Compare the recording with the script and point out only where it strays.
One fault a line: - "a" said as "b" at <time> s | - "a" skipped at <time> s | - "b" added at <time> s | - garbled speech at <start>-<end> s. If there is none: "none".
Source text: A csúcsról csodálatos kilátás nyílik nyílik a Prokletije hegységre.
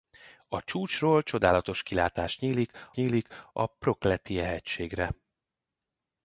none